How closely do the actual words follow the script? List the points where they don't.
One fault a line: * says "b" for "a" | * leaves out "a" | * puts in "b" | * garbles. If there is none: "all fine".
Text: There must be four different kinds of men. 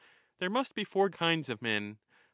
* leaves out "different"